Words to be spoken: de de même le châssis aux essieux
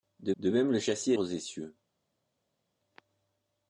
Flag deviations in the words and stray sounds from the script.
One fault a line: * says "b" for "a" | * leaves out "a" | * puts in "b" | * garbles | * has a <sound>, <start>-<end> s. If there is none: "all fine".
all fine